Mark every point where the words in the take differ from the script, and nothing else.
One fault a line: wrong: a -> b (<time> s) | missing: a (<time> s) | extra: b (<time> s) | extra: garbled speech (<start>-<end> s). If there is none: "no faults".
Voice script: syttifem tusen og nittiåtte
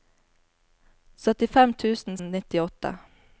no faults